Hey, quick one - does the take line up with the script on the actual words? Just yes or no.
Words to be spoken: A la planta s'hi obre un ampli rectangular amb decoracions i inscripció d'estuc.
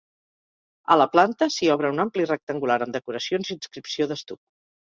yes